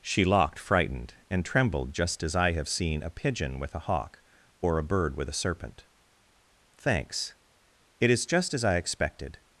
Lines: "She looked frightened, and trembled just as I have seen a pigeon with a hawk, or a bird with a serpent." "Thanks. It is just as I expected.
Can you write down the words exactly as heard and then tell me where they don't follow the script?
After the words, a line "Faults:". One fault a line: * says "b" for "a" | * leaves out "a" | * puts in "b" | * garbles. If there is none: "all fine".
"She locked frightened, and trembled just as I have seen a pigeon with a hawk, or a bird with a serpent." "Thanks. It is just as I expected.
Faults:
* says "locked" for "looked"